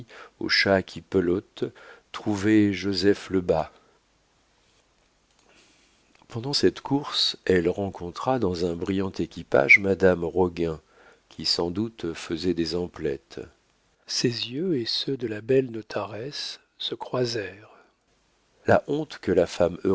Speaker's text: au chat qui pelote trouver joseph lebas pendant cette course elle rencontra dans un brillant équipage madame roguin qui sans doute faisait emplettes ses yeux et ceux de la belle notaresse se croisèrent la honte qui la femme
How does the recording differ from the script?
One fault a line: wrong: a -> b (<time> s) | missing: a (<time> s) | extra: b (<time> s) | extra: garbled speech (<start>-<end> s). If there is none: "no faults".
extra: des (12.5 s)
wrong: qui -> que (19.2 s)